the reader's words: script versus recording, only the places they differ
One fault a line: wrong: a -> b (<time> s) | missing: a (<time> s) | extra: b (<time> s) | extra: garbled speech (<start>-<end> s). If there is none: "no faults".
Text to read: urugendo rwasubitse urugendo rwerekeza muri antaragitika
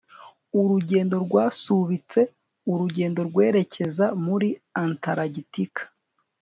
no faults